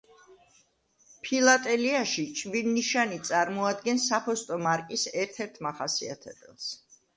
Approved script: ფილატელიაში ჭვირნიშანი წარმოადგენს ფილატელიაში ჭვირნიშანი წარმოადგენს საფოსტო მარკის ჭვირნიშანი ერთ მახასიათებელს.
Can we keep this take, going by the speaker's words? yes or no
no